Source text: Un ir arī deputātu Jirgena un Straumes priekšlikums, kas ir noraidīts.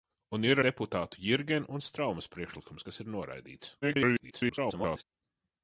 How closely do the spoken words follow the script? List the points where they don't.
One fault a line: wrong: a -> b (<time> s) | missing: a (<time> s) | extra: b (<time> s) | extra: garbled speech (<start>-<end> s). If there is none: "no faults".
missing: arī (0.6 s)
extra: garbled speech (3.8-5.0 s)